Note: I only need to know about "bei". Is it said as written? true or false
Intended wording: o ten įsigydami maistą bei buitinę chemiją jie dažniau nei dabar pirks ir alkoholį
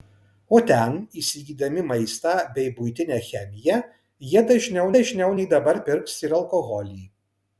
true